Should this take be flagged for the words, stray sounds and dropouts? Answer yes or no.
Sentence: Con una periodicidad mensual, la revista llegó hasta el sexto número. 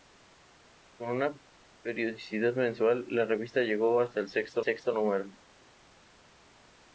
yes